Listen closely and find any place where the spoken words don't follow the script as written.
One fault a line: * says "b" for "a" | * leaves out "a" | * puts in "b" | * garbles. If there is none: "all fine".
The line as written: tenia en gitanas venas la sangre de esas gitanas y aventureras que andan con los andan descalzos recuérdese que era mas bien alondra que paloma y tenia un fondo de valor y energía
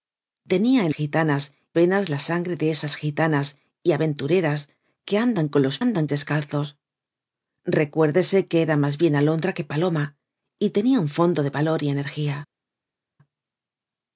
all fine